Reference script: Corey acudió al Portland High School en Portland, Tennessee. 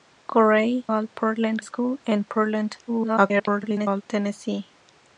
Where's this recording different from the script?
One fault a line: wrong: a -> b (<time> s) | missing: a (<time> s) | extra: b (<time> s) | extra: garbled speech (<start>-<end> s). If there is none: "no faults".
missing: acudió (0.9 s)
missing: High (1.6 s)
extra: garbled speech (2.9-4.0 s)